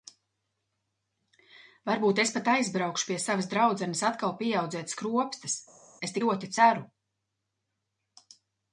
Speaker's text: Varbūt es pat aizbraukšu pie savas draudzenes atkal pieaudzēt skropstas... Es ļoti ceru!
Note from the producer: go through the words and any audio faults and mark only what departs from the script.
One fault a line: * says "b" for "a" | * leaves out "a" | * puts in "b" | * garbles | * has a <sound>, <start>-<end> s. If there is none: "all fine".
all fine